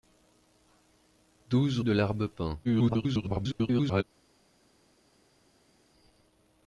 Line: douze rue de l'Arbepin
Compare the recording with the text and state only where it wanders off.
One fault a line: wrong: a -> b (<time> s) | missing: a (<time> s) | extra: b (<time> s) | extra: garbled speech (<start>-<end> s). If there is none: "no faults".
missing: rue (1.8 s)
extra: garbled speech (2.6-4.0 s)